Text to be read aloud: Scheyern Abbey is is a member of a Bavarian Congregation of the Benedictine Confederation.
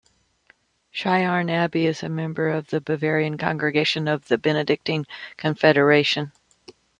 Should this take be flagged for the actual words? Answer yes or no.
yes